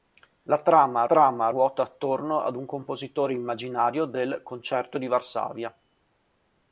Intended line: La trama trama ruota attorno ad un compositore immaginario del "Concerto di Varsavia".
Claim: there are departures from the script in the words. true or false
false